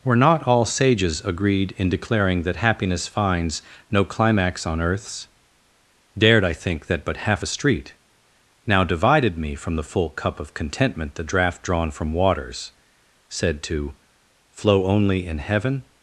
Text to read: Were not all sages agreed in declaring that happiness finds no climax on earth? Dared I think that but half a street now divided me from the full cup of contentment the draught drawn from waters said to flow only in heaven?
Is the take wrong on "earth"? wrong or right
wrong